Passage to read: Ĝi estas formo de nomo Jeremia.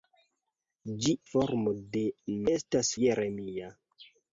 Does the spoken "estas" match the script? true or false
false